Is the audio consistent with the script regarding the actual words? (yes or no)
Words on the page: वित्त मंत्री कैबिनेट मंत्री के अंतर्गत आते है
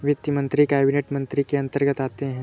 yes